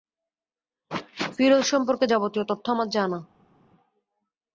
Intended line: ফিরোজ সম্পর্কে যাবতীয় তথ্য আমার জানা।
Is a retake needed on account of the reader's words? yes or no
no